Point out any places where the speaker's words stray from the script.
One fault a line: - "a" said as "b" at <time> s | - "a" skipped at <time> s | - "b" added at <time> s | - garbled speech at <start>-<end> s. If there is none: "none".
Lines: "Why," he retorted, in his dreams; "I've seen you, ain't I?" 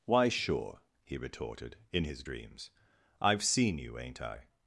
- "sure" added at 0.3 s